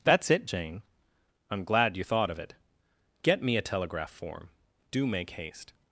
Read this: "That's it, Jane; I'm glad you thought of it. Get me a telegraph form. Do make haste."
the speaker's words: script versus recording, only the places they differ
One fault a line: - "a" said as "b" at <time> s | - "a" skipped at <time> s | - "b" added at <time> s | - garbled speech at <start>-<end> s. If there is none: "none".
none